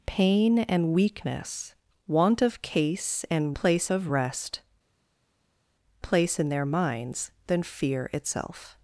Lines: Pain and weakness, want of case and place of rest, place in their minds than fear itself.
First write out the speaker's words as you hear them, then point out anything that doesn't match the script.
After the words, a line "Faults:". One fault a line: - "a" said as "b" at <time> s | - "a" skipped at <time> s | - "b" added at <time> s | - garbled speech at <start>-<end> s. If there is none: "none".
Pain and weakness, want of case and place of rest, place in their minds than fear itself.
Faults:
none